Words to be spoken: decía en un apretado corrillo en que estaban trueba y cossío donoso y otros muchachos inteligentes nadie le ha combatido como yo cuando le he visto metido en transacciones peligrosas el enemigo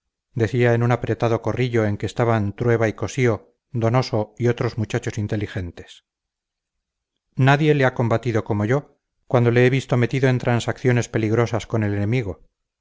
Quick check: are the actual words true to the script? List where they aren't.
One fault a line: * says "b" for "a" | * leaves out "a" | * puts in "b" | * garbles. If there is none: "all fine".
* puts in "con"